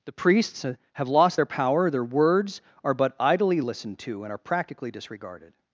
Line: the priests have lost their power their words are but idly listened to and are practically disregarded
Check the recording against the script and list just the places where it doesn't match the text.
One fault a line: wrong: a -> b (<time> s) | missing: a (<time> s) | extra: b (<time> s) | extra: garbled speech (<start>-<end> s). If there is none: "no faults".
no faults